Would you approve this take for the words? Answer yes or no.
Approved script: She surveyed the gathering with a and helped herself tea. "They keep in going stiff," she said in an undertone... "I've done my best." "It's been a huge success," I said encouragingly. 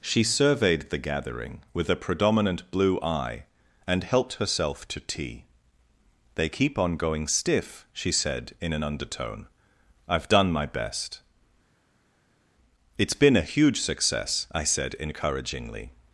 no